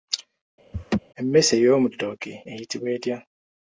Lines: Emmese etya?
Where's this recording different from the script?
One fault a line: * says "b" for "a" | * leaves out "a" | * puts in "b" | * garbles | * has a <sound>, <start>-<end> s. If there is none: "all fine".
* has a laugh, 0.7-1.0 s
* puts in "ey'omu ttooke eyitibwa"